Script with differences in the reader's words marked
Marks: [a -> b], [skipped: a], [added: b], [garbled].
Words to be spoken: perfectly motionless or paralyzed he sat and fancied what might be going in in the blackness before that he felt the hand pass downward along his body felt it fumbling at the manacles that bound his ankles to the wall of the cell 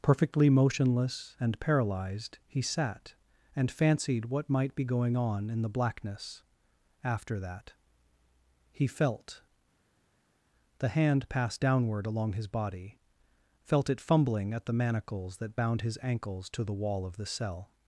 perfectly motionless [or -> and] paralyzed he sat and fancied what might be going [in -> on] in the blackness [before -> after] that he felt the hand pass downward along his body felt it fumbling at the manacles that bound his ankles to the wall of the cell